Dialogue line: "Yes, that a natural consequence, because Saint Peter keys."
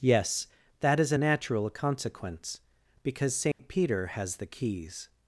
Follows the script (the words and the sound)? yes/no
no